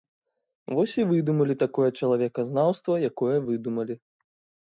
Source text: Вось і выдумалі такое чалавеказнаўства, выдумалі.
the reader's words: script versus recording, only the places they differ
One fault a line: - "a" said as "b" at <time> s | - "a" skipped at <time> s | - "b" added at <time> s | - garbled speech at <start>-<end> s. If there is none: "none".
- "якое" added at 3.1 s